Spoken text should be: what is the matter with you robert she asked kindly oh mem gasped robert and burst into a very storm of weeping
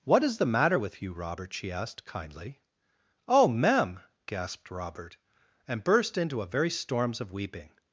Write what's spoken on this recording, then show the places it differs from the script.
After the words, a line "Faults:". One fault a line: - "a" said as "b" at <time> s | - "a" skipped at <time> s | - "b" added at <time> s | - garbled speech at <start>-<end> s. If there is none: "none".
what is the matter with you robert she asked kindly oh mem gasped robert and burst into a very storms of weeping
Faults:
- "storm" said as "storms" at 6.7 s